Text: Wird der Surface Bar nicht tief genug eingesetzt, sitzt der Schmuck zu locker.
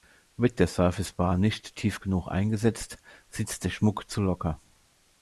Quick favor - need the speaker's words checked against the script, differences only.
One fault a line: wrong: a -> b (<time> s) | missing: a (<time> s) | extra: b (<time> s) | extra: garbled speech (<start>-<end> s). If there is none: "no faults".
no faults